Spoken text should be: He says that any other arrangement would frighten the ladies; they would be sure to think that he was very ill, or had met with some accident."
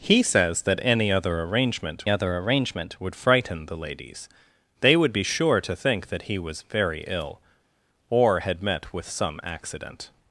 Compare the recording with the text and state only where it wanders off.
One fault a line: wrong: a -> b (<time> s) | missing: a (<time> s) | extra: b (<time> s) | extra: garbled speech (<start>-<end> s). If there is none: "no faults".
extra: other arrangement (2.1 s)